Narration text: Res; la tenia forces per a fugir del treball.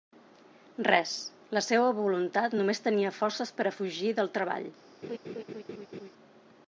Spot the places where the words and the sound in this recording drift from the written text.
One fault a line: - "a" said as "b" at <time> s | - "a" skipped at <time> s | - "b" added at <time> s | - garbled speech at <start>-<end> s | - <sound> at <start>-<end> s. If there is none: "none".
- "seua voluntat només" added at 1.7 s
- laugh at 5.0-6.1 s